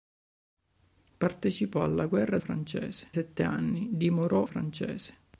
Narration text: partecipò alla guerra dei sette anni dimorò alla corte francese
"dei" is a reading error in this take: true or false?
true